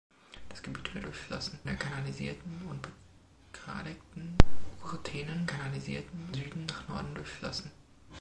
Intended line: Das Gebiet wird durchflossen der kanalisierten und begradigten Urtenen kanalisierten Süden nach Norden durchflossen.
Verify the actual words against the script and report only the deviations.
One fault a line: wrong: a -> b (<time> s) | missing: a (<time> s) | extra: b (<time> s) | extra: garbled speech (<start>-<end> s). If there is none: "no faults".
no faults